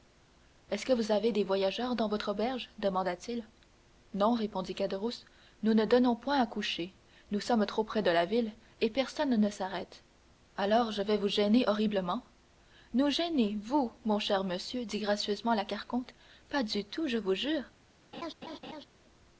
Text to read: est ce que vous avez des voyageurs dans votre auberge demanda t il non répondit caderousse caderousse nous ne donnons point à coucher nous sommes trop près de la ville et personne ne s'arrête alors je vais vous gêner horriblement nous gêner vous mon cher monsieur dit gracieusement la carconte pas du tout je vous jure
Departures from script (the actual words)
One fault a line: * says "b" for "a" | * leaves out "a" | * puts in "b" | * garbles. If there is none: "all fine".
* leaves out "caderousse"